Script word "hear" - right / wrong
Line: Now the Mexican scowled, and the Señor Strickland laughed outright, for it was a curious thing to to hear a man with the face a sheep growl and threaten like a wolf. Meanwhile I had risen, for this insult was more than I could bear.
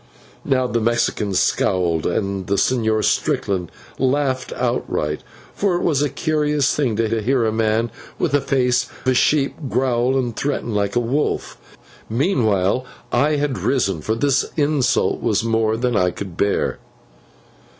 right